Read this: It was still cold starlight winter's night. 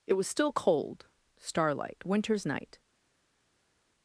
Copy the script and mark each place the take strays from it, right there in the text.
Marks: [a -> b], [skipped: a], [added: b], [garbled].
It was still cold starlight winter's night.